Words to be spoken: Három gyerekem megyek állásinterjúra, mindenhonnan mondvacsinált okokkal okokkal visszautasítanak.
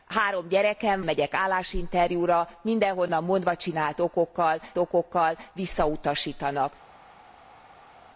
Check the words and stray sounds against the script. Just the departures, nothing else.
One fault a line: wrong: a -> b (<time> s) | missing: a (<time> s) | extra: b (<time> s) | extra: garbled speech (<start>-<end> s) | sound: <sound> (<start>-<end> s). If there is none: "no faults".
no faults